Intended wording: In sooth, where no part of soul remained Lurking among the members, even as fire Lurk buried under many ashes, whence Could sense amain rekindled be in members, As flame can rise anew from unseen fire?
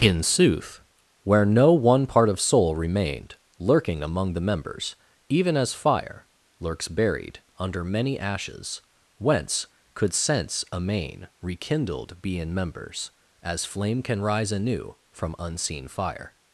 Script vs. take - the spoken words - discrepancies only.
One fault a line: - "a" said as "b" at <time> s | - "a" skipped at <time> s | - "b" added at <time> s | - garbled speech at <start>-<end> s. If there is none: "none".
- "one" added at 1.7 s
- "Lurk" said as "Lurks" at 6.6 s